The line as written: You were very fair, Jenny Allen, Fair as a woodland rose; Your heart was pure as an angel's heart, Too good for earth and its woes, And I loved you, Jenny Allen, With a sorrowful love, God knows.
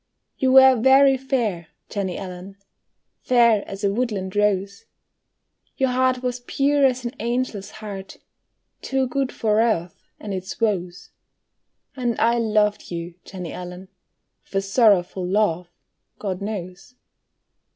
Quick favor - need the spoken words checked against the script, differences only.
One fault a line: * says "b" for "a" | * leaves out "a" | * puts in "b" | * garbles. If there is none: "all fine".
all fine